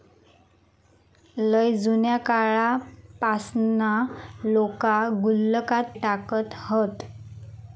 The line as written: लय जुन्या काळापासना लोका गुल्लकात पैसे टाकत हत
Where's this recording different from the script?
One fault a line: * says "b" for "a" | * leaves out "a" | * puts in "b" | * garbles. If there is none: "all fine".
* leaves out "पैसे"